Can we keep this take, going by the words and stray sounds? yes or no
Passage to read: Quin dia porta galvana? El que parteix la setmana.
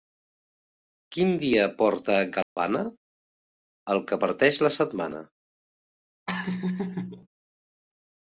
no